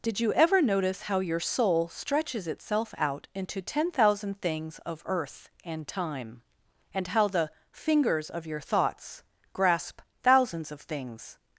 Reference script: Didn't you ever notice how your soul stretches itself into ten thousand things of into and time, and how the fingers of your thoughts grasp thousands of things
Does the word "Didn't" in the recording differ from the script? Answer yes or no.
yes